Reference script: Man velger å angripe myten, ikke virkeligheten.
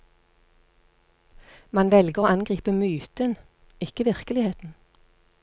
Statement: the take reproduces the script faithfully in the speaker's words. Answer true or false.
true